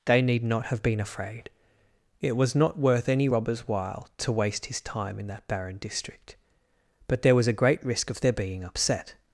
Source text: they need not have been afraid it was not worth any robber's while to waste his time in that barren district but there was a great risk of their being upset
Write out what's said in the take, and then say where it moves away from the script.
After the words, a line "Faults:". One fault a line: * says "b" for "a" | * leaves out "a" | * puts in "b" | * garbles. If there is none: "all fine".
they need not have been afraid it was not worth any robber's while to waste his time in that barren district but there was a great risk of their being upset
Faults:
all fine